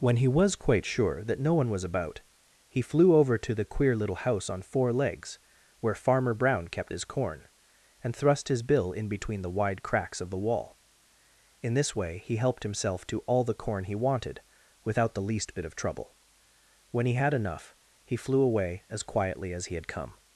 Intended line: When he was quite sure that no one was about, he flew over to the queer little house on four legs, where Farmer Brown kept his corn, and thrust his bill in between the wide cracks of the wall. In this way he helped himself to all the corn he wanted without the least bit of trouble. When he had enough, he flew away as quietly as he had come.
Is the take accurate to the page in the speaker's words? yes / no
yes